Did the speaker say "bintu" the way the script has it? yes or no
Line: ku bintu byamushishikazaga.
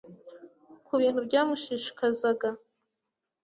yes